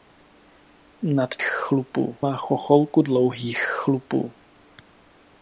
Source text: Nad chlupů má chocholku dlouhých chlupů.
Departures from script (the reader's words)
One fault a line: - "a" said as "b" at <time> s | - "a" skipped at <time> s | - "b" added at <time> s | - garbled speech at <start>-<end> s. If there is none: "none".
none